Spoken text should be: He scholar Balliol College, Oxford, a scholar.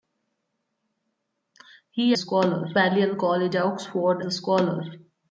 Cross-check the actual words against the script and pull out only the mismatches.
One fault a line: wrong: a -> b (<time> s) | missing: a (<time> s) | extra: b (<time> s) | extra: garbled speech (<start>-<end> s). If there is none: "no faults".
no faults